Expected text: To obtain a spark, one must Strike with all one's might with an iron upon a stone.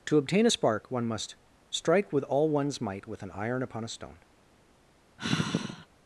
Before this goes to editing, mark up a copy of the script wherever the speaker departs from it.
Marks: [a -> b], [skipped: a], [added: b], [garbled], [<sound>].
To obtain a spark, one must Strike with all one's might with an iron upon a stone. [sigh]